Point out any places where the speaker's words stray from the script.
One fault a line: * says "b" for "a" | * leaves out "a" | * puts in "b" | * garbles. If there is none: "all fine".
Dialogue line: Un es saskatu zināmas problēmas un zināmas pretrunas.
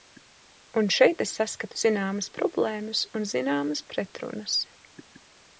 * puts in "šeit"